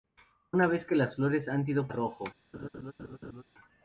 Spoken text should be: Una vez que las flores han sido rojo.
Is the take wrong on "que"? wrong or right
right